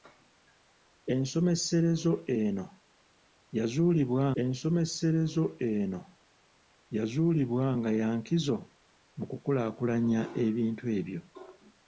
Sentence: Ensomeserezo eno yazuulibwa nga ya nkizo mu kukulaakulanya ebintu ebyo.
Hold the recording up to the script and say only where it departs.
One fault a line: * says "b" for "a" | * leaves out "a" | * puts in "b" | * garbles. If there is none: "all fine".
* puts in "ensomeserezo eno yazuulibwa"